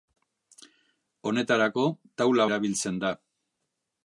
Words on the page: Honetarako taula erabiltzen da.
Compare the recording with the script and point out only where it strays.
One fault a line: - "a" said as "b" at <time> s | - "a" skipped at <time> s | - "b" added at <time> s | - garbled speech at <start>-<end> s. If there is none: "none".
none